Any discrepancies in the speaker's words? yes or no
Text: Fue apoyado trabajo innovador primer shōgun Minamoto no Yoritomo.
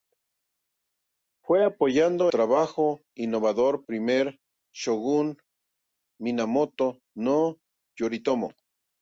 no